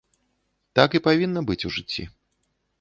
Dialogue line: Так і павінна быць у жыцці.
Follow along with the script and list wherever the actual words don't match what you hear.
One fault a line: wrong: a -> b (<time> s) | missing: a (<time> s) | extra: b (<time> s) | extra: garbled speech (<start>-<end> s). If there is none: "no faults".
no faults